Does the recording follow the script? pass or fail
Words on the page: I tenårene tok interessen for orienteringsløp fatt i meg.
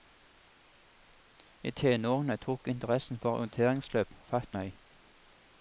fail